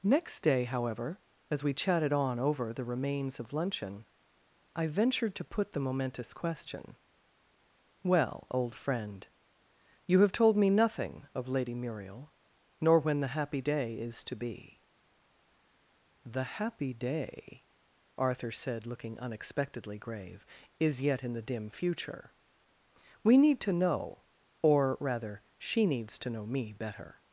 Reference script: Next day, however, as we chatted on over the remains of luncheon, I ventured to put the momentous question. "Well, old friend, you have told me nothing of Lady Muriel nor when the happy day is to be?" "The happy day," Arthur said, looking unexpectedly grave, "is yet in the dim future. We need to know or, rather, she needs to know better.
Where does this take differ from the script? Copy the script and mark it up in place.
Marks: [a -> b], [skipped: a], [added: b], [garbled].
Next day, however, as we chatted on over the remains of luncheon, I ventured to put the momentous question. "Well, old friend, you have told me nothing of Lady Muriel nor when the happy day is to be?" "The happy day," Arthur said, looking unexpectedly grave, "is yet in the dim future. We need to know or, rather, she needs to know [added: me] better.